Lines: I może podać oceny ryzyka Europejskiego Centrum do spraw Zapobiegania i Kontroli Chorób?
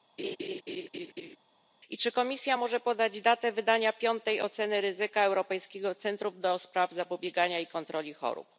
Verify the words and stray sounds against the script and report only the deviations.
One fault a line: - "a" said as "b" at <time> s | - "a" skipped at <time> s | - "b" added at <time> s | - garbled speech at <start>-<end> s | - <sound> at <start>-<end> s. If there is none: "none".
- laugh at 0.2-1.4 s
- "czy Komisja" added at 2.0 s
- "datę wydania piątej" added at 3.2 s